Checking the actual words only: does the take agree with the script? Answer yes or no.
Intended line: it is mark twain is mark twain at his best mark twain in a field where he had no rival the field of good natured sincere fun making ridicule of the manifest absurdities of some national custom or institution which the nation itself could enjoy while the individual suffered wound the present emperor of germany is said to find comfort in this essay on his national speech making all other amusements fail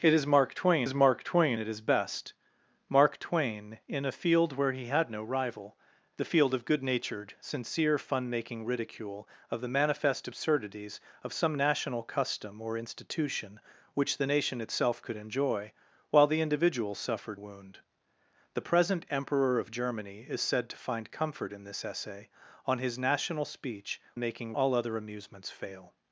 yes